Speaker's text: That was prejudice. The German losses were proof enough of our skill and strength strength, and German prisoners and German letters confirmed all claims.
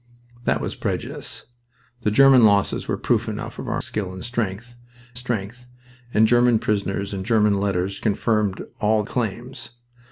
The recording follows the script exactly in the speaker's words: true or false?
true